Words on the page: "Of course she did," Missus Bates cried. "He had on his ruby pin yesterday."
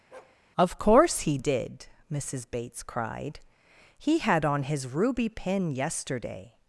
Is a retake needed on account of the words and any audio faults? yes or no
yes